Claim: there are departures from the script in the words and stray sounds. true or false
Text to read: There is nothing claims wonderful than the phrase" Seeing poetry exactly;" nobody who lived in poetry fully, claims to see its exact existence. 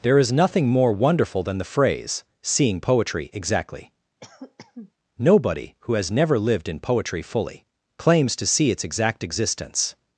true